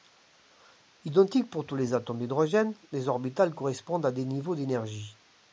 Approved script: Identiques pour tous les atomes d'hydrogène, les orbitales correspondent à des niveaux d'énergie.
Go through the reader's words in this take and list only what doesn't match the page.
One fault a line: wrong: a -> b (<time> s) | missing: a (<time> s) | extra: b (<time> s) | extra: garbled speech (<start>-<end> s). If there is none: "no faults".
no faults